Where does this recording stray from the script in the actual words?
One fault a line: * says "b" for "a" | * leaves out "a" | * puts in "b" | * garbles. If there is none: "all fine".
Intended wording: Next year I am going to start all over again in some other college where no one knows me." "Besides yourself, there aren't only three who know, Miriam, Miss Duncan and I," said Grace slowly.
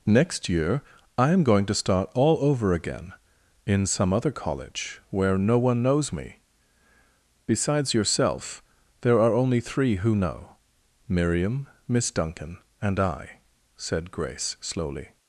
* says "are" for "aren't"